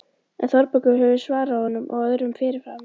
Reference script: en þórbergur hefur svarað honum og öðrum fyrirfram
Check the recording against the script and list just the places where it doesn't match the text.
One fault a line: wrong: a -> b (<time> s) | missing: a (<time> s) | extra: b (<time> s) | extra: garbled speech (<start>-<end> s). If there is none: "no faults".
no faults